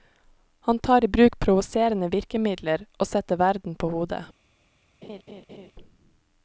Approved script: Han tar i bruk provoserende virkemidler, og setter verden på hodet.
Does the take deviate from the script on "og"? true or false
false